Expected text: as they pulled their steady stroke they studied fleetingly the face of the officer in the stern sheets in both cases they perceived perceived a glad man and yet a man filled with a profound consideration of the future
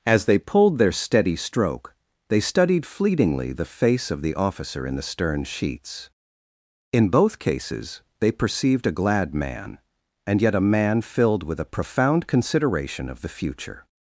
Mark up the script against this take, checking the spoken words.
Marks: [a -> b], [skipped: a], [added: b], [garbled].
as they pulled their steady stroke they studied fleetingly the face of the officer in the stern sheets in both cases they perceived [skipped: perceived] a glad man and yet a man filled with a profound consideration of the future